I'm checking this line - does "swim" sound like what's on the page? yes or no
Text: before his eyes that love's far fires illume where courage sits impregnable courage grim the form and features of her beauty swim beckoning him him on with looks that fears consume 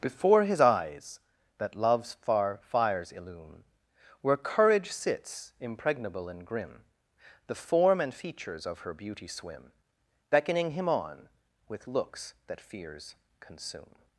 yes